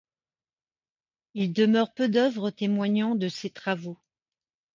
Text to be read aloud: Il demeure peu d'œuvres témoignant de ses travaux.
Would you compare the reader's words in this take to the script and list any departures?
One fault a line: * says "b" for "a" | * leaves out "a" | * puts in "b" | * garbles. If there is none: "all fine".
all fine